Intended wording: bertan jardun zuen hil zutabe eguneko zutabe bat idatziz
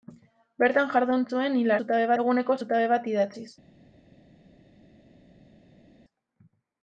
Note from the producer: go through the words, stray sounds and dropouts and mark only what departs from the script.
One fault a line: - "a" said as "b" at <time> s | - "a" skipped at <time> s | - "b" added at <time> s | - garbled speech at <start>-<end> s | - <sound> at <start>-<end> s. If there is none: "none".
none